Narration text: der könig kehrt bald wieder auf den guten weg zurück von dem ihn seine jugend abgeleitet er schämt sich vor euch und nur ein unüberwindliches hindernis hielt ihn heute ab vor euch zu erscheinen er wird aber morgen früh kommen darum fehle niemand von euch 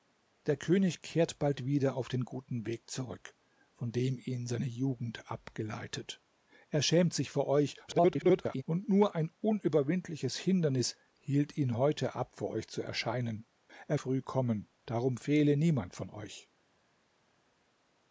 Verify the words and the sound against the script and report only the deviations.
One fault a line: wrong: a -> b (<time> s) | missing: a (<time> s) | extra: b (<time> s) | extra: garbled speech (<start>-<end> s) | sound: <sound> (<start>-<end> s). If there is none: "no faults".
extra: garbled speech (7.9-8.6 s)
missing: wird aber morgen (14.0 s)